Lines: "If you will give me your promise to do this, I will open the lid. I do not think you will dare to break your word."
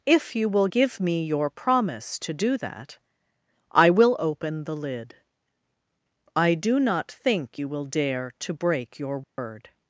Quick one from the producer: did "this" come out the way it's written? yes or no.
no